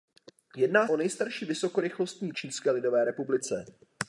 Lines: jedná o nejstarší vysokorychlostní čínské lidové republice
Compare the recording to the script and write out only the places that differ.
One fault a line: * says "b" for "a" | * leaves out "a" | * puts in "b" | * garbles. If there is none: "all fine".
all fine